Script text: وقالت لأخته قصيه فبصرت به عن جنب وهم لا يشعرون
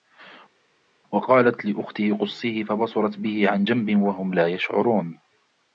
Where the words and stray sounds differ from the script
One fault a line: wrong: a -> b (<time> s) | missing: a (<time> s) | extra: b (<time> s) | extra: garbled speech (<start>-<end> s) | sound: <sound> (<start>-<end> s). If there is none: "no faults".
no faults